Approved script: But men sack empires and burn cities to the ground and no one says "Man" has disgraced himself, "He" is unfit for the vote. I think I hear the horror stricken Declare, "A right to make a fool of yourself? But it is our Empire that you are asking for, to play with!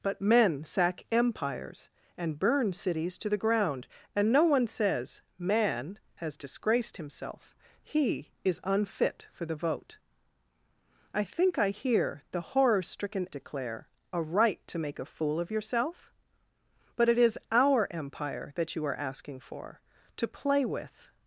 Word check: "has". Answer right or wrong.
right